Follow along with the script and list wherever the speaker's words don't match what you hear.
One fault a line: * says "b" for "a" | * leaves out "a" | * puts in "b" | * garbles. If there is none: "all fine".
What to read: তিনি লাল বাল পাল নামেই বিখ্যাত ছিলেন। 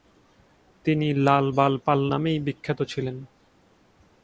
all fine